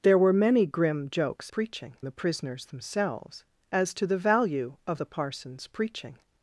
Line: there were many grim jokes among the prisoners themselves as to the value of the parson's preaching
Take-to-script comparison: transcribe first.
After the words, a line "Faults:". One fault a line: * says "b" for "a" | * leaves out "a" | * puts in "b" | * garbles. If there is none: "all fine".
there were many grim jokes preaching the prisoners themselves as to the value of the parson's preaching
Faults:
* says "preaching" for "among"